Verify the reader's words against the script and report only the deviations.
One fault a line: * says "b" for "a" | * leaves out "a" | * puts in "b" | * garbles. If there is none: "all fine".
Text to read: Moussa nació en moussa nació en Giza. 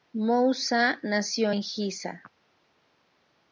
* leaves out "moussa nació en"